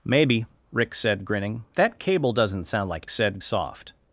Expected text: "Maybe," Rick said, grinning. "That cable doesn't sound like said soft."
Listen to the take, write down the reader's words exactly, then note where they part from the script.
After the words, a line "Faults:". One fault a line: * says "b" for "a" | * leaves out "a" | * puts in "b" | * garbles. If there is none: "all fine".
"Maybe," Rick said, grinning. "That cable doesn't sound like said soft."
Faults:
all fine